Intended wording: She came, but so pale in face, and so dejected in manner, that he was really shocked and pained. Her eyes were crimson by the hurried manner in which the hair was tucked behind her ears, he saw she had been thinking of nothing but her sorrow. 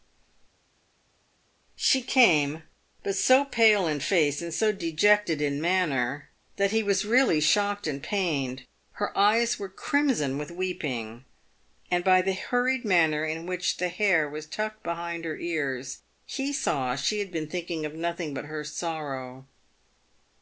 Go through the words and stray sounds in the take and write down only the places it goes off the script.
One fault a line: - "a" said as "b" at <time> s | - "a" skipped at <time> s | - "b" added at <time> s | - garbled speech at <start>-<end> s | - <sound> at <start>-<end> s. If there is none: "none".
- "with weeping and" added at 10.4 s